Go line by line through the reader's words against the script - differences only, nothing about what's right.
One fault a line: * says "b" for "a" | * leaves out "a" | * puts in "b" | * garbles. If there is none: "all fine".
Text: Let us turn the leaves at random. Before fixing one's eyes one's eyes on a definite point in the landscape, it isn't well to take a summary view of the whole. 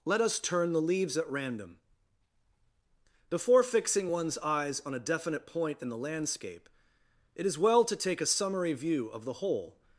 * leaves out "one's eyes"
* says "is" for "isn't"